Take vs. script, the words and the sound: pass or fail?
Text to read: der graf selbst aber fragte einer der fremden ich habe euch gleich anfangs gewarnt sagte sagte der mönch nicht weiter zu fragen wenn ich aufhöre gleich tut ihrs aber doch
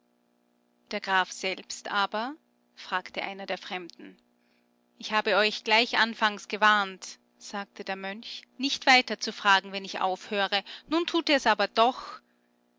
fail